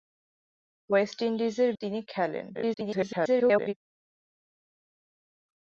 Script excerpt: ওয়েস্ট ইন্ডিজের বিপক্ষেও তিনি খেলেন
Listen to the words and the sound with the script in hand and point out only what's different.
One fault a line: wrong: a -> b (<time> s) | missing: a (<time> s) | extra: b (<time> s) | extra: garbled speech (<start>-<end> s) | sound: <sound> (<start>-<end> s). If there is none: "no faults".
missing: বিপক্ষেও (1.7 s)
extra: garbled speech (2.5-3.7 s)